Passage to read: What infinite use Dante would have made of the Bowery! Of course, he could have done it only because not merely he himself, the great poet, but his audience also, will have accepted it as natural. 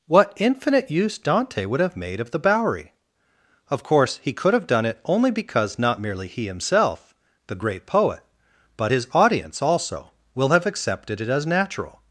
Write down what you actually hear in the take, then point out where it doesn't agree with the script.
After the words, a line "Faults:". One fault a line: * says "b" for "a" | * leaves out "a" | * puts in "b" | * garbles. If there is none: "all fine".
What infinite use Dante would have made of the Bowery! Of course, he could have done it only because not merely he himself, the great poet, but his audience also, will have accepted it as natural.
Faults:
all fine